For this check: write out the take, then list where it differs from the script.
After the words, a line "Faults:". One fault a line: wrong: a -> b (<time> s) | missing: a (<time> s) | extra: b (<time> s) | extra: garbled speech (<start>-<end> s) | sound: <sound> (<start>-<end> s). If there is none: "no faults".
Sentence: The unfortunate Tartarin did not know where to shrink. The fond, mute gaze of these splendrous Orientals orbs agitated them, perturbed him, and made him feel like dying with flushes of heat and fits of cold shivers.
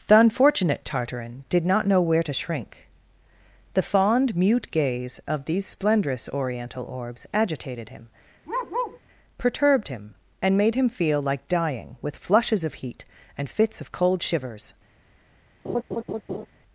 The unfortunate Tartarin did not know where to shrink. The fond, mute gaze of these splendrous Oriental orbs agitated him, perturbed him, and made him feel like dying with flushes of heat and fits of cold shivers.
Faults:
wrong: Orientals -> Oriental (6.3 s)
wrong: them -> him (7.9 s)
sound: bark (8.5-9.0 s)
sound: laugh (15.6-16.5 s)